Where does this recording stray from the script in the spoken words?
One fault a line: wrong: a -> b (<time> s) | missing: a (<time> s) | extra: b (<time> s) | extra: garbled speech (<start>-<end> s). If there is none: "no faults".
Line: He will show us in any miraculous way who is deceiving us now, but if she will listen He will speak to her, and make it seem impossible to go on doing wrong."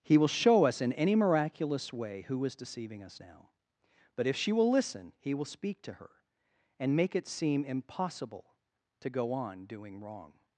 no faults